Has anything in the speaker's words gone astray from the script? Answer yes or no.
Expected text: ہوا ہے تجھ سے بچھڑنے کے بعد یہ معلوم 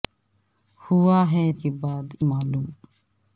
yes